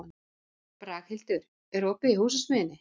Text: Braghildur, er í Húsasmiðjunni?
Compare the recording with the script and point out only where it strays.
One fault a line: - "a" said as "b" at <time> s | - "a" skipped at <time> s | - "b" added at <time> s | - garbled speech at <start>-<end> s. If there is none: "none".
- "opið" added at 1.9 s